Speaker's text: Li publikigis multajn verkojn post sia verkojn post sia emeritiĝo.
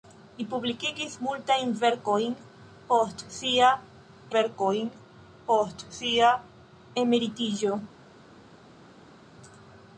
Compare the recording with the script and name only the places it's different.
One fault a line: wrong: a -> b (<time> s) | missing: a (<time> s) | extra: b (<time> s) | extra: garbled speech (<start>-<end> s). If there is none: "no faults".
no faults